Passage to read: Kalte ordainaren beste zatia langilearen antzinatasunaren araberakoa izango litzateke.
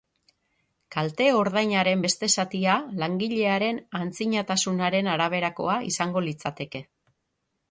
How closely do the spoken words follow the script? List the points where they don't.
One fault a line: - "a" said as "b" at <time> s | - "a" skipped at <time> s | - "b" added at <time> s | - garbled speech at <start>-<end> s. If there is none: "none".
none